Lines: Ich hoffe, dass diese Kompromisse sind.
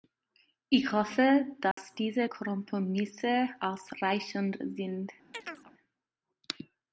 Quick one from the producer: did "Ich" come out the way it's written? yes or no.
yes